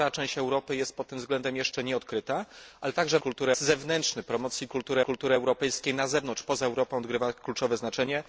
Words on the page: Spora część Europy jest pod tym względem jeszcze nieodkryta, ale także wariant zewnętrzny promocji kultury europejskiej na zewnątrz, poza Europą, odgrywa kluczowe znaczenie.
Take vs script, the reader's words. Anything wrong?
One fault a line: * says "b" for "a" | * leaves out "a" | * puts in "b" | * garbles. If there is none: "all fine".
* says "kultury" for "wariant"
* puts in "kultury"